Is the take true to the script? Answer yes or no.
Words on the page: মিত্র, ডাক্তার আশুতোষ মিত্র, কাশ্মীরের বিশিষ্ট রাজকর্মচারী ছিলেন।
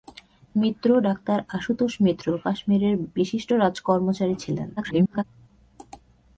no